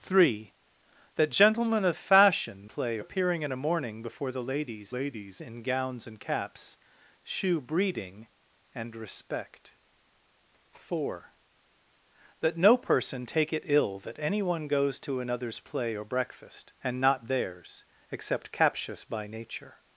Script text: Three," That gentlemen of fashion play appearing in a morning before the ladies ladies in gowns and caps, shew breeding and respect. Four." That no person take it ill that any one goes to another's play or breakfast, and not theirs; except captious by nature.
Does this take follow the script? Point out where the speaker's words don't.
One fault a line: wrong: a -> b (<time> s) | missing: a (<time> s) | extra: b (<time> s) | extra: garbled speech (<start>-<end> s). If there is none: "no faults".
no faults